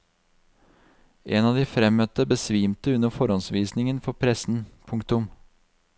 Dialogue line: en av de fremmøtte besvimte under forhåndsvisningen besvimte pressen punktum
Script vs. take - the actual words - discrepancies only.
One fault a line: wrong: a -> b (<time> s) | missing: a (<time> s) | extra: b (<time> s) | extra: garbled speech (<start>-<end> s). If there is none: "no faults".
wrong: besvimte -> for (4.1 s)